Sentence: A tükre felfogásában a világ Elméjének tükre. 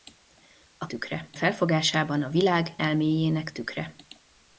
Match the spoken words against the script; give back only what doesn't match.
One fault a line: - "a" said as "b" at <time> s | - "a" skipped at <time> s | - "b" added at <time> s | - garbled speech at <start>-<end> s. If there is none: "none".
none